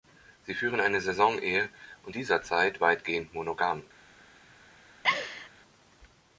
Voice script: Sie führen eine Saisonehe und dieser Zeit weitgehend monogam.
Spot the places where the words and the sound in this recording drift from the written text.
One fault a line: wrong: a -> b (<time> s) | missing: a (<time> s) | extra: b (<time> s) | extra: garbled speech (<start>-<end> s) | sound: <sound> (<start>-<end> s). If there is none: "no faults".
sound: laugh (5.0-5.5 s)